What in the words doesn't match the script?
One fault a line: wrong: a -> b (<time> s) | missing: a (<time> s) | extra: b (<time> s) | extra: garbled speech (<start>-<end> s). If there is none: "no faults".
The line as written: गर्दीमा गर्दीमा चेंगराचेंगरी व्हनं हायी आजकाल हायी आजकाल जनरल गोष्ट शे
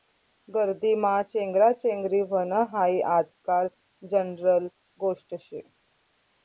missing: गर्दीमा (1.1 s)
missing: हायी आजकाल (3.7 s)